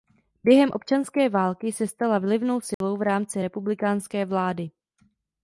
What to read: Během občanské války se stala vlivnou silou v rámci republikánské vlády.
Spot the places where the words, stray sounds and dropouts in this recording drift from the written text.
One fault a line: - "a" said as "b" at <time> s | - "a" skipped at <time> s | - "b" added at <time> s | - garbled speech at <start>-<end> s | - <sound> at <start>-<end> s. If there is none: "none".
- dropout at 2.7-2.8 s